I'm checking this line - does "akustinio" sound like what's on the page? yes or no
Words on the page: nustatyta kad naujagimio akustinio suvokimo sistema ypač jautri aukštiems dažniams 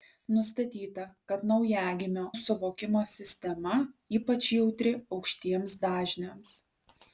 no